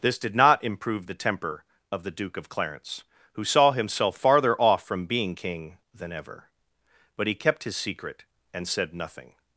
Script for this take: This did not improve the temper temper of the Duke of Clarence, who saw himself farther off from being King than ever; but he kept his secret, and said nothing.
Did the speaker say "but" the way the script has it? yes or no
yes